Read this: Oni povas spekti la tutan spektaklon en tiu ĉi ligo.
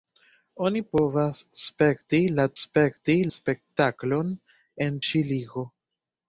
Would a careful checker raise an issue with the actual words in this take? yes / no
yes